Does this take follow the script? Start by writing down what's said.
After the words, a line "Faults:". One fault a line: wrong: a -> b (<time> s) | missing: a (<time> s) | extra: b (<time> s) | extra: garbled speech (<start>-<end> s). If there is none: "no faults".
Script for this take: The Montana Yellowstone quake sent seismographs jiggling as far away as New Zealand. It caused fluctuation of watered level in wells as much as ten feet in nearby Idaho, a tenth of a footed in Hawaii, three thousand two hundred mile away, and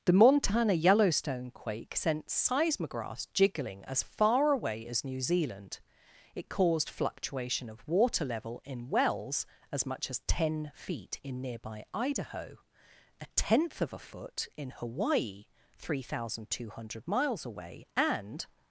The Montana Yellowstone quake sent seismographs jiggling as far away as New Zealand. It caused fluctuation of water level in wells as much as ten feet in nearby Idaho, a tenth of a foot in Hawaii, three thousand two hundred miles away, and
Faults:
wrong: watered -> water (7.9 s)
wrong: footed -> foot (14.0 s)
wrong: mile -> miles (17.1 s)